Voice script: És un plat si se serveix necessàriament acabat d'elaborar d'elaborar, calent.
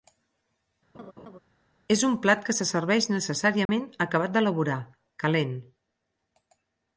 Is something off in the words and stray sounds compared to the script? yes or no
yes